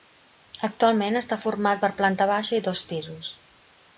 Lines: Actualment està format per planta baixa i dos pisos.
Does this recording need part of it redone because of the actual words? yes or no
no